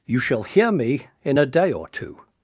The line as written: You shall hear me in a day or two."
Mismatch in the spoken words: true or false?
false